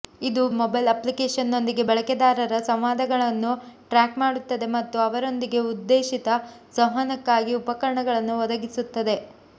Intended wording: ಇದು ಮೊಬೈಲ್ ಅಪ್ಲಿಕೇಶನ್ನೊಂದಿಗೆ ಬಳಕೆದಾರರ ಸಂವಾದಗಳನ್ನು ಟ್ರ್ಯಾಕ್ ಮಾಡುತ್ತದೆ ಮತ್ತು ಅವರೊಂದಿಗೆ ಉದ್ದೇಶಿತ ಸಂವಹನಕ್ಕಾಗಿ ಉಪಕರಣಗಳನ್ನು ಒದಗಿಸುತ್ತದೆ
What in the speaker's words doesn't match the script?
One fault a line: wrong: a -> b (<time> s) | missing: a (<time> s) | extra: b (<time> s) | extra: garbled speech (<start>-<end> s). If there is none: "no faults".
no faults